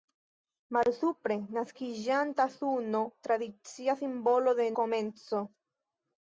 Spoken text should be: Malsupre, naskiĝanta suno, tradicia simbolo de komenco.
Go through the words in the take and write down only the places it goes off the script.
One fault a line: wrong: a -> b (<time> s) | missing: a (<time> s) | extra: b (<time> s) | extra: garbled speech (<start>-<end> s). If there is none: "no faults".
no faults